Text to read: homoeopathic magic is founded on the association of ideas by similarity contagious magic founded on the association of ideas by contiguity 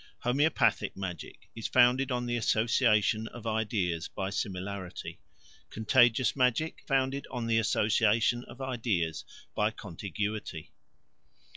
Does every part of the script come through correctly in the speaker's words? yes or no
yes